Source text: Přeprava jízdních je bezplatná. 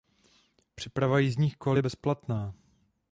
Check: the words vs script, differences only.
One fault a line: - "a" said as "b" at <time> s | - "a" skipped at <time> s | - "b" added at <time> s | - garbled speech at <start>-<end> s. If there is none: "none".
- "kol" added at 1.6 s